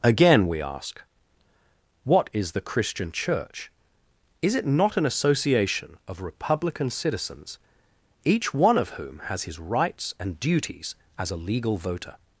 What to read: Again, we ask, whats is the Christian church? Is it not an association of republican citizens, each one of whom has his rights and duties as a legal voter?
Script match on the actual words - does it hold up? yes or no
no